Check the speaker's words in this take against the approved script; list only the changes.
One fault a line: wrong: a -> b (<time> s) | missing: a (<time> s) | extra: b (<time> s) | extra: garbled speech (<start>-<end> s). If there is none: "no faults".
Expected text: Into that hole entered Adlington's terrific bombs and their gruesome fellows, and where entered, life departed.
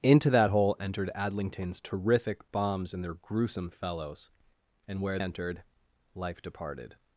no faults